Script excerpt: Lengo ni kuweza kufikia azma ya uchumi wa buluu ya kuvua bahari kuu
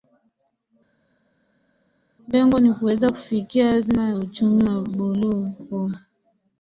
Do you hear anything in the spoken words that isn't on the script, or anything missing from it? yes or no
yes